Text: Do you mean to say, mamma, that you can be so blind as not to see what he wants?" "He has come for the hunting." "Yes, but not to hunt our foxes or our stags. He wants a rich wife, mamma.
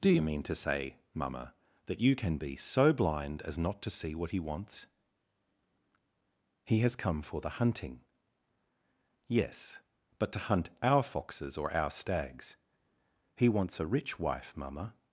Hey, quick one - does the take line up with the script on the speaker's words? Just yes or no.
no